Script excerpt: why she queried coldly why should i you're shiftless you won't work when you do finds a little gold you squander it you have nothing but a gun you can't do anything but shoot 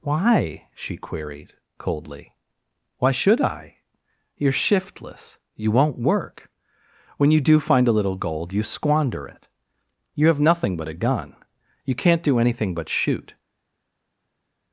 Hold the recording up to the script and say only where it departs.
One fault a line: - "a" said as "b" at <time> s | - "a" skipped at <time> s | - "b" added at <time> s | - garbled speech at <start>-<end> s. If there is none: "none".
- "finds" said as "find" at 7.6 s